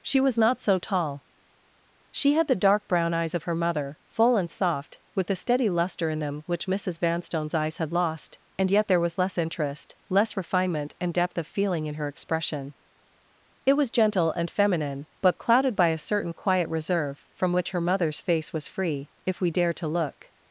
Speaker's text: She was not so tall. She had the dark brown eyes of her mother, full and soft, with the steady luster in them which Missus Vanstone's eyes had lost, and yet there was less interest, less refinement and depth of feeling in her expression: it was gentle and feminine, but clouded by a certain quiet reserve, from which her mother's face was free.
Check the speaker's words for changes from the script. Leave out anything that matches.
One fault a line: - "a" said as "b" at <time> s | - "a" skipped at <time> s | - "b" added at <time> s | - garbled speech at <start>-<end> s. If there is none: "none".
- "If we dare to look" added at 19.3 s